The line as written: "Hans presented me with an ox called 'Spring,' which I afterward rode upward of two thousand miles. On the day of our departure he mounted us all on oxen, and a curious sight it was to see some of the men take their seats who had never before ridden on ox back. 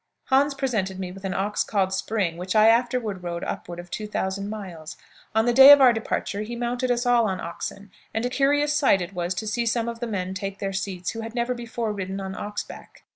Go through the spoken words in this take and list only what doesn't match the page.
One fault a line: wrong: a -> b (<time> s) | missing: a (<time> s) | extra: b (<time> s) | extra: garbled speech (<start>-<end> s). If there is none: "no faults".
no faults